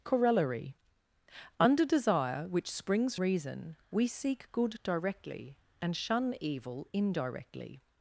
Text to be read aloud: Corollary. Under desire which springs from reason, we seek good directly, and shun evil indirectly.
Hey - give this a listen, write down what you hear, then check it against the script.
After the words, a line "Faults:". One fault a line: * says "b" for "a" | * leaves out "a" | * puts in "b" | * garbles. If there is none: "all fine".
Corollary. Under desire which springs reason, we seek good directly, and shun evil indirectly.
Faults:
* leaves out "from"